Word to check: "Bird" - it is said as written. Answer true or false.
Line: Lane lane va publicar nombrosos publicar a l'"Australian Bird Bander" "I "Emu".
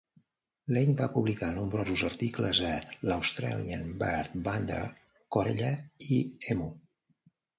true